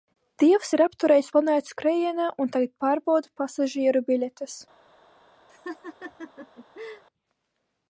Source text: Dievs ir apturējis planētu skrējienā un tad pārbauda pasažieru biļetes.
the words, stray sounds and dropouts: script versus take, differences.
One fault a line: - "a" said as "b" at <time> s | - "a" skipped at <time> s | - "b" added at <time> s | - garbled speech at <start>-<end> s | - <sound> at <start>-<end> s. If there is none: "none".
- "tad" said as "tagad" at 2.6 s
- laugh at 5.5-7.0 s